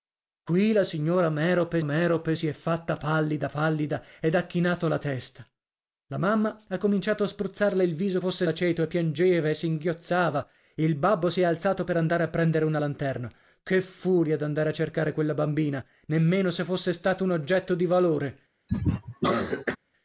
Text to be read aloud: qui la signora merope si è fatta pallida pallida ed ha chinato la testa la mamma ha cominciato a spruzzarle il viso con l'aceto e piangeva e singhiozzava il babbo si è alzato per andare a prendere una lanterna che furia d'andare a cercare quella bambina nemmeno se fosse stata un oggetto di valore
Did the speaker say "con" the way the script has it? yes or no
no